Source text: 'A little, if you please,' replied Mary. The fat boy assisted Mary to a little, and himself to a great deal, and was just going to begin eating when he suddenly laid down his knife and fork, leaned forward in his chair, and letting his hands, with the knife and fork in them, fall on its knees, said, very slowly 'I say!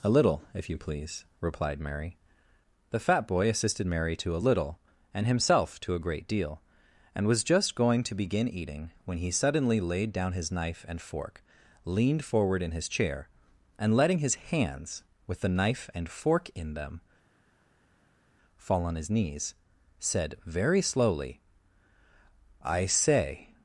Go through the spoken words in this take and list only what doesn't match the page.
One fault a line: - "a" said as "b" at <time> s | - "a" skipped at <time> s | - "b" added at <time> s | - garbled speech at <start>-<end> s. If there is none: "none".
- "its" said as "his" at 19.0 s